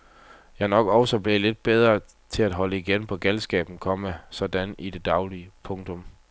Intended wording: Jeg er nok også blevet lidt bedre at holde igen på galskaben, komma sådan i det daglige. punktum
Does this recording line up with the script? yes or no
no